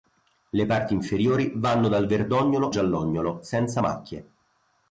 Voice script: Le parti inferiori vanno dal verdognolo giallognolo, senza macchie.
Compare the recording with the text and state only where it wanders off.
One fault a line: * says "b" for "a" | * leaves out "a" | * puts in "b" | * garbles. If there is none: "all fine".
all fine